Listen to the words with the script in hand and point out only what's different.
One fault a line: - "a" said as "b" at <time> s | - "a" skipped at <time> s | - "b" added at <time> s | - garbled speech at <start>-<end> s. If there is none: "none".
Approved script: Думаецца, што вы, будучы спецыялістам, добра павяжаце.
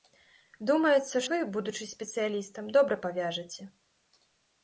- "што" skipped at 1.2 s